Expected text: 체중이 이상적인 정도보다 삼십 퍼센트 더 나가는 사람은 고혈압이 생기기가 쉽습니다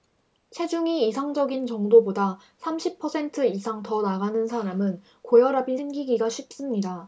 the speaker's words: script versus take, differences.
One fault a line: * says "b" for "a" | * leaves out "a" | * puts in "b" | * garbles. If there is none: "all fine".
* puts in "이상"